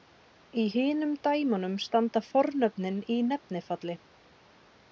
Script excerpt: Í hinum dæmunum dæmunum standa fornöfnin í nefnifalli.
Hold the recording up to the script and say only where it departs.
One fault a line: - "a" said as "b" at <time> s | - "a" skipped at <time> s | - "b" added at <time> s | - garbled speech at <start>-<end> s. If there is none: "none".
- "dæmunum" skipped at 1.7 s